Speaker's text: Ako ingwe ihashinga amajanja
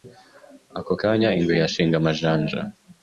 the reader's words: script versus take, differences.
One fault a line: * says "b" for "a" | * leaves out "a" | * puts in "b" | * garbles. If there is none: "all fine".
* puts in "kanya"